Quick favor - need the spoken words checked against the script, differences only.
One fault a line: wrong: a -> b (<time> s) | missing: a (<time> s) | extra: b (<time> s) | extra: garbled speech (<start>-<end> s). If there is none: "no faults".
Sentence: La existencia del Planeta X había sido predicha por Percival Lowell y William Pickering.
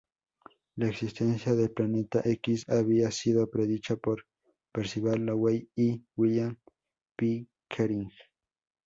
no faults